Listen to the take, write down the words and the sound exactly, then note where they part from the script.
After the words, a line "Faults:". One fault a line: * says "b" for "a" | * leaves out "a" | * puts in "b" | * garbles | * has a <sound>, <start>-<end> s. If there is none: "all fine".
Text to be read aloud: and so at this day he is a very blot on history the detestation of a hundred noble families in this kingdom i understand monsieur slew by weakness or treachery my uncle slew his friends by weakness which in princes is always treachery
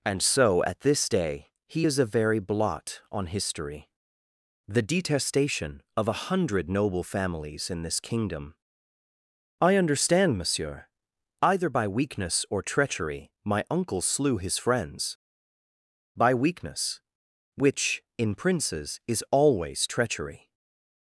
and so at this day he is a very blot on history the detestation of a hundred noble families in this kingdom i understand monsieur either by weakness or treachery my uncle slew his friends by weakness which in princes is always treachery
Faults:
* says "either" for "slew"